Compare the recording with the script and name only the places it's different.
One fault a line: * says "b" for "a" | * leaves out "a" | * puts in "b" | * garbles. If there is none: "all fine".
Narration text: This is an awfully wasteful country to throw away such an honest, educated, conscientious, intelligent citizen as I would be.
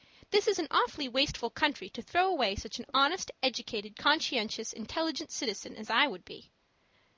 all fine